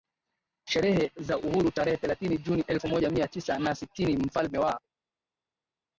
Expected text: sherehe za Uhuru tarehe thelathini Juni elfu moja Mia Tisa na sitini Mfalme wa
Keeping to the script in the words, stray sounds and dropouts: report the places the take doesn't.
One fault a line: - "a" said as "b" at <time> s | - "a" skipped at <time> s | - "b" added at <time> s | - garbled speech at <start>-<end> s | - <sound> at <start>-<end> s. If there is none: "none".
none